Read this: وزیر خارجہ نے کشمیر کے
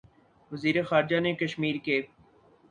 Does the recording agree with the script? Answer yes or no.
yes